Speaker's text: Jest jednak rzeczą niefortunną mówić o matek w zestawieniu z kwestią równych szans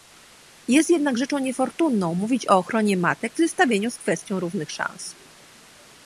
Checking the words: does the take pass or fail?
fail